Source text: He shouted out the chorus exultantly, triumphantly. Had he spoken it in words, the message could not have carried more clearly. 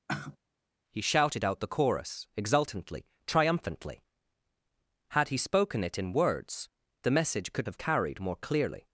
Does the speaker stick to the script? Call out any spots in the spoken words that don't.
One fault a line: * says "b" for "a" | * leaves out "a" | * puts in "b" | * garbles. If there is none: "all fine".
* leaves out "not"